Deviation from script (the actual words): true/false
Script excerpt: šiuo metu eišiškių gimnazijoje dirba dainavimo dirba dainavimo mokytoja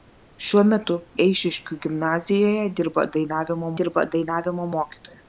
false